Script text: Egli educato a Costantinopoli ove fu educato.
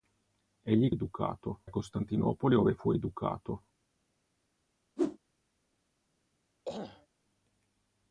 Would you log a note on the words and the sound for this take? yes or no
yes